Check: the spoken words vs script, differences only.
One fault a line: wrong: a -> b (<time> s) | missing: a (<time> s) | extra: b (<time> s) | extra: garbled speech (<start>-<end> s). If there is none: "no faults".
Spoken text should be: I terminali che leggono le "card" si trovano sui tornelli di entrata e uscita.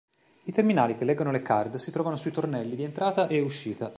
no faults